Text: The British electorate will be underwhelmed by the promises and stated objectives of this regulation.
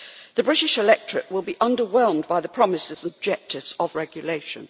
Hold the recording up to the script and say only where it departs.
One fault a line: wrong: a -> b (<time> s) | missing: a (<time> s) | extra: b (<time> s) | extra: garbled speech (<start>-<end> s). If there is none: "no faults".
missing: stated (3.1 s)
missing: this (4.0 s)